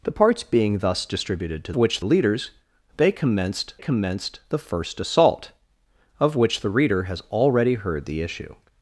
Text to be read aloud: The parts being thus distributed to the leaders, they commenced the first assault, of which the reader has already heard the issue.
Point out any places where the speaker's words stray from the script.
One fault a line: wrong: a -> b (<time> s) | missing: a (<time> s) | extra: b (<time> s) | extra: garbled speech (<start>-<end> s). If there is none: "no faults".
wrong: the -> which (1.8 s)
extra: commenced (3.8 s)